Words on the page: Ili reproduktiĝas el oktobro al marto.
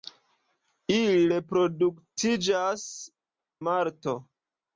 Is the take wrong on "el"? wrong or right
wrong